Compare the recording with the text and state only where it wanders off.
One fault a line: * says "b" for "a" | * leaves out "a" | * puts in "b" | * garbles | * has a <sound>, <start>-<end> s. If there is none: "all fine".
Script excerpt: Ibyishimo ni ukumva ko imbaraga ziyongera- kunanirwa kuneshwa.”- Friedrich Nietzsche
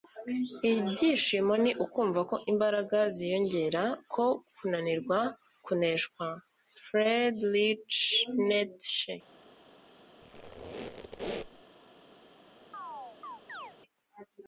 * puts in "ko"
* has a squeak, 10.2-11.6 s
* has a chirp, 12.7-13.7 s